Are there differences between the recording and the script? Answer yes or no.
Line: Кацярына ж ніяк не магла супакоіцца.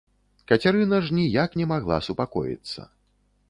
no